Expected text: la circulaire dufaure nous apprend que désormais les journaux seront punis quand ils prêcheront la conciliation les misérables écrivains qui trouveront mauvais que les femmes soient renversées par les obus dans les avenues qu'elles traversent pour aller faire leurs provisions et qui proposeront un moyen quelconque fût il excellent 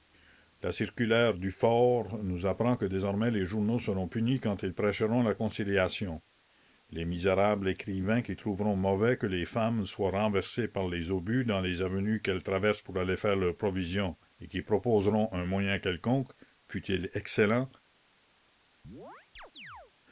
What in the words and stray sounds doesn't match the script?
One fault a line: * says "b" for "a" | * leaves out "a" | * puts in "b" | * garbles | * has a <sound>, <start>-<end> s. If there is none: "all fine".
* has a chirp, 18.8-19.9 s